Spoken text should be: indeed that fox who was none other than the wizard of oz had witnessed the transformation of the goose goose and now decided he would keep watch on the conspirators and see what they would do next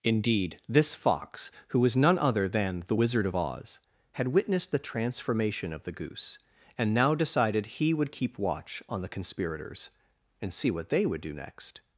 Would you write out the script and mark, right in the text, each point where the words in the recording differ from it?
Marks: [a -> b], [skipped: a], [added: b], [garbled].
indeed [that -> this] fox who was none other than the wizard of oz had witnessed the transformation of the goose [skipped: goose] and now decided he would keep watch on the conspirators and see what they would do next